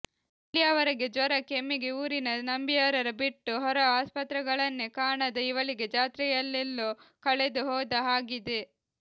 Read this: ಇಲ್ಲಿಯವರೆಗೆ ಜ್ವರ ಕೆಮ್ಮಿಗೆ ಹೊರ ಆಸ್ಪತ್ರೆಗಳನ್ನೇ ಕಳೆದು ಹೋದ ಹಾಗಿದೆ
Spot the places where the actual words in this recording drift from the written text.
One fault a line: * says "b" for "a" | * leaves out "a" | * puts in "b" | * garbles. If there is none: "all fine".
* puts in "ಊರಿನ ನಂಬಿಯಾರರ ಬಿಟ್ಟು"
* puts in "ಕಾಣದ ಇವಳಿಗೆ ಜಾತ್ರೆಯಲ್ಲೆಲ್ಲೋ"